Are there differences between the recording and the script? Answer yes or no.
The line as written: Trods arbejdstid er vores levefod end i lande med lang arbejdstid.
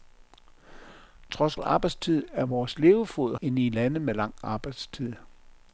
no